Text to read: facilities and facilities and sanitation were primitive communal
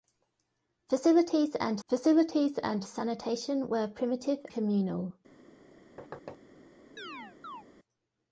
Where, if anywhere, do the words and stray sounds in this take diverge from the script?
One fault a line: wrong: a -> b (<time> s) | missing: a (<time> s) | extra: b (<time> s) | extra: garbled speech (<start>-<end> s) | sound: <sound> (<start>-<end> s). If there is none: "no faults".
sound: thud (6.0-6.4 s)
sound: chirp (7.0-7.6 s)